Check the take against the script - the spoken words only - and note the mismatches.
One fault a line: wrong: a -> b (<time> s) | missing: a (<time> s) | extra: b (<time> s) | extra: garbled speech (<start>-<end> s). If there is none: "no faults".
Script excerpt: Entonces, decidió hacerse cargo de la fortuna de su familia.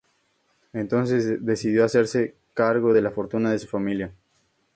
no faults